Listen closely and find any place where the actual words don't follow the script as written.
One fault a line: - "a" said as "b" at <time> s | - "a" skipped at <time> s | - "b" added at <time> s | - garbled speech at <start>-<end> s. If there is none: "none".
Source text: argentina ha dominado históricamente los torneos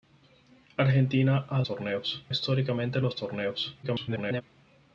- "dominado" said as "torneos" at 1.6 s
- garbled speech at 3.8-4.4 s